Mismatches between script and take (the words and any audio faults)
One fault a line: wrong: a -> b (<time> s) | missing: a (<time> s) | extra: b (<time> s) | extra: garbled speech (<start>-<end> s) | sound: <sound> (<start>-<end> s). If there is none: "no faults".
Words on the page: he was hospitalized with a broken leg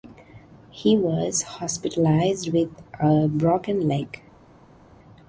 no faults